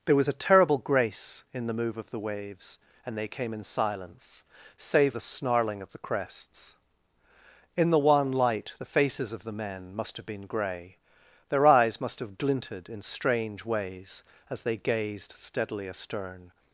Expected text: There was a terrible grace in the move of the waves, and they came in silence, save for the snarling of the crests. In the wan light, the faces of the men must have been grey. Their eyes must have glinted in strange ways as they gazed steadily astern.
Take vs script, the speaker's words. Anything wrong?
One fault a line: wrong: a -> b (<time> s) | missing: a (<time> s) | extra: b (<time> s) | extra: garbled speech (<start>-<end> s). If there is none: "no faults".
missing: for (5.1 s)